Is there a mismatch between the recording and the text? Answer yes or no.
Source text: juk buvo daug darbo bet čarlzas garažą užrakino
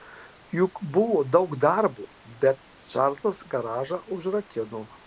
no